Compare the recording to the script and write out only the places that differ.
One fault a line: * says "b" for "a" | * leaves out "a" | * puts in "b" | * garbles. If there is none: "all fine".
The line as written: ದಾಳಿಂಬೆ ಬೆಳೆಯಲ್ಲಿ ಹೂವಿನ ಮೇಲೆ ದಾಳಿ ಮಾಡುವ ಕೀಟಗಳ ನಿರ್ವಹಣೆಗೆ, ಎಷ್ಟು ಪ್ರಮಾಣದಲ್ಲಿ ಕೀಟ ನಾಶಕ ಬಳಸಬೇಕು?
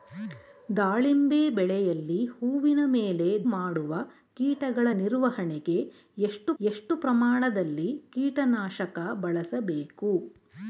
* leaves out "ದಾಳಿ"
* puts in "ಎಷ್ಟು"